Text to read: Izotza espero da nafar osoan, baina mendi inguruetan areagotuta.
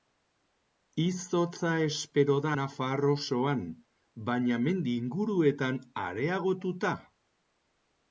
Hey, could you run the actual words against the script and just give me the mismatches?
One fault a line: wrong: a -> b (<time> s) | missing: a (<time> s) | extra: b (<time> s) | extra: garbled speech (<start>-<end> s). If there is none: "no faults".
no faults